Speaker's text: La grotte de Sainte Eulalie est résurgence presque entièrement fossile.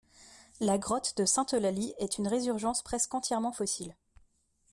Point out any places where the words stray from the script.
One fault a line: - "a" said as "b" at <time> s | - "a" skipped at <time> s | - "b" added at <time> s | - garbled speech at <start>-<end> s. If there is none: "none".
- "une" added at 2.2 s